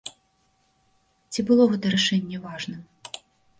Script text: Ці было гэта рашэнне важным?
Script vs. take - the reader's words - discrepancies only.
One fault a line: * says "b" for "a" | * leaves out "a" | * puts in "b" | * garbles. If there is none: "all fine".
all fine